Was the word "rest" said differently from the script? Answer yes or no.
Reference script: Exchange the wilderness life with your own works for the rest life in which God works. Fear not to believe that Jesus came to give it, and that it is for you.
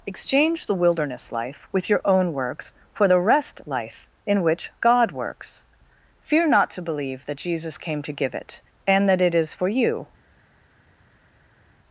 no